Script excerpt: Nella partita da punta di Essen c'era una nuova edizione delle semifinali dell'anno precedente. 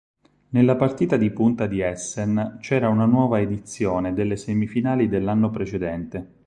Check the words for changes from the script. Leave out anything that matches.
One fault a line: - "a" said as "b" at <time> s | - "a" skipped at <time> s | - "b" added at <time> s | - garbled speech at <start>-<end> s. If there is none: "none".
- "da" said as "di" at 1.1 s